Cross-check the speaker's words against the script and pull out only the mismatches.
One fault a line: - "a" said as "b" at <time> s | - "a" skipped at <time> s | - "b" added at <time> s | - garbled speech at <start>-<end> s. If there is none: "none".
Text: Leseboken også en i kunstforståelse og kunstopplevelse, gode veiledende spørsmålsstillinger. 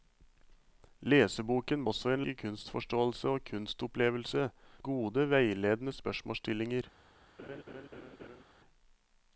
none